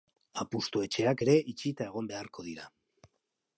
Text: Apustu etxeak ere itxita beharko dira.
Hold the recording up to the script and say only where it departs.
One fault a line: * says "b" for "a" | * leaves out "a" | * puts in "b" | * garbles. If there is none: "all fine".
* puts in "egon"